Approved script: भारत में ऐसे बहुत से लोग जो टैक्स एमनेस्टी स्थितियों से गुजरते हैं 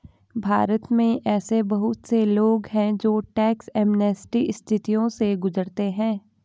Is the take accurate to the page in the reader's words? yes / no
no